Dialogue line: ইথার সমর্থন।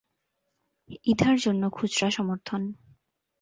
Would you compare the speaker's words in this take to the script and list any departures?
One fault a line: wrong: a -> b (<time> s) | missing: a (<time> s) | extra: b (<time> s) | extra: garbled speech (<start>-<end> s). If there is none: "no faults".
extra: জন্য খুচরা (1.4 s)